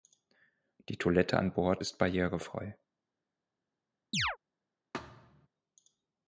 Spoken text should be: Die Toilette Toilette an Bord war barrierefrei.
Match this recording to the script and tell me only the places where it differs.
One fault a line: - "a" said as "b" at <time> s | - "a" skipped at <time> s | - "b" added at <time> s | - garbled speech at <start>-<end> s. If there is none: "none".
- "Toilette" skipped at 1.4 s
- "war" said as "ist" at 1.8 s